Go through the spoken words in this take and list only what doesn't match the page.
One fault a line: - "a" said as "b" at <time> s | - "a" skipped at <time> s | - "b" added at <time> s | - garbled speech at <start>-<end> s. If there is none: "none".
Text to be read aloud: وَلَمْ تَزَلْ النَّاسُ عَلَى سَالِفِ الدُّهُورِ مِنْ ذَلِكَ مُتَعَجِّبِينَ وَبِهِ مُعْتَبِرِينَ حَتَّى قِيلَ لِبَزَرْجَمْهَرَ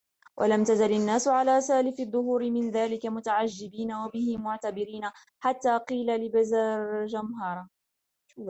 none